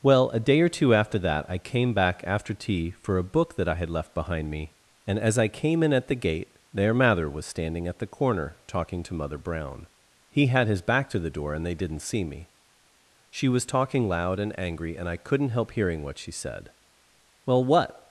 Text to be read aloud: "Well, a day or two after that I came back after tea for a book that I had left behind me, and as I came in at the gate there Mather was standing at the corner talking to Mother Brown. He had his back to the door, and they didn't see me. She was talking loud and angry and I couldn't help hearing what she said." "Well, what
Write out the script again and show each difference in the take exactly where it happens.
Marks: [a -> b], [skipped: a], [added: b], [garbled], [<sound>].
"Well, a day or two after that I came back after tea for a book that I had left behind me, and as I came in at the gate there Mather was standing at the corner talking to Mother Brown. He had his back to the door, and they didn't see me. She was talking loud and angry and I couldn't help hearing what she said." "Well, what